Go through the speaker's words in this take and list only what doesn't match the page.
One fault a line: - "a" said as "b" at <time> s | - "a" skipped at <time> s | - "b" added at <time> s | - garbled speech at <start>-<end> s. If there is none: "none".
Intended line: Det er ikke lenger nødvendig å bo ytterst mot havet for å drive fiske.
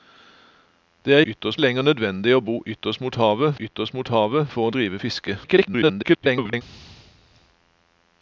- "ikke" said as "ytterst" at 1.2 s
- "ytterst mot havet" added at 3.6 s
- garbled speech at 5.4-6.6 s